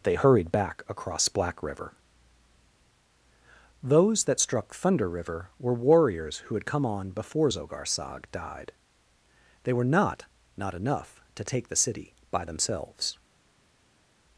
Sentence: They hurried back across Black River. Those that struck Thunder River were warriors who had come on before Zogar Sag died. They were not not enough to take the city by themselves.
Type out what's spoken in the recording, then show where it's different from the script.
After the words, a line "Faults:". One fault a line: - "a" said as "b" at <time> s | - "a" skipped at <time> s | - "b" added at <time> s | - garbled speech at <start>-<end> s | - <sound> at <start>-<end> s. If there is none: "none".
They hurried back across Black River. Those that struck Thunder River were warriors who had come on before Zogar Sag died. They were not not enough to take the city by themselves.
Faults:
none